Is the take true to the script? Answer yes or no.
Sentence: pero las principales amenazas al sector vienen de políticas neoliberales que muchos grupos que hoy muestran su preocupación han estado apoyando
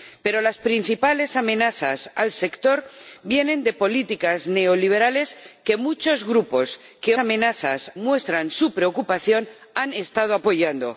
no